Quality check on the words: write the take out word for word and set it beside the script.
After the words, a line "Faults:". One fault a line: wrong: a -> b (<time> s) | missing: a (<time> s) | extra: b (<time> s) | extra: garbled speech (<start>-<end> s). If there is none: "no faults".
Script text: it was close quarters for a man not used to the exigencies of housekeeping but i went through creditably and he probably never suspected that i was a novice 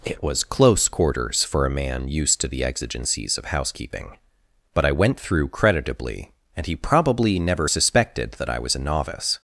it was close quarters for a man used to the exigencies of housekeeping but i went through creditably and he probably never suspected that i was a novice
Faults:
missing: not (2.1 s)